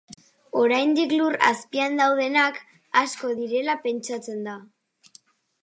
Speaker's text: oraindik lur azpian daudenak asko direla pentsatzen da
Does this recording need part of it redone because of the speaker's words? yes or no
no